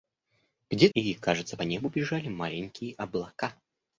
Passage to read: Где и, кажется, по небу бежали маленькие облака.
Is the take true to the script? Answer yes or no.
yes